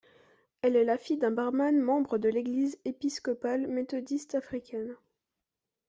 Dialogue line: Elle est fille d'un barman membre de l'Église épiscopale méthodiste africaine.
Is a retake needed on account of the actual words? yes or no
yes